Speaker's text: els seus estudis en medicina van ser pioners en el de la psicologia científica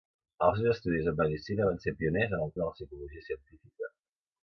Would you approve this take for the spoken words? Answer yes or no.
yes